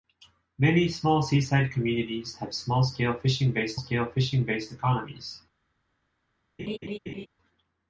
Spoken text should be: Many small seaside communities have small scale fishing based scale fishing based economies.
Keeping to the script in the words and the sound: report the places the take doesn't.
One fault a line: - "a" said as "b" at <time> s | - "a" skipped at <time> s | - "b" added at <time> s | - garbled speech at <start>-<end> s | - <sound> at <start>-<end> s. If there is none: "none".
- laugh at 6.6-7.3 s